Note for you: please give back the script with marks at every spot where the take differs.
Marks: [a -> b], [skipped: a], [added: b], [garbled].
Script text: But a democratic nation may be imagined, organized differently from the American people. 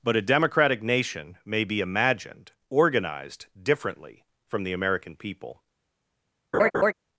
But a democratic nation may be imagined, organized differently from the American people.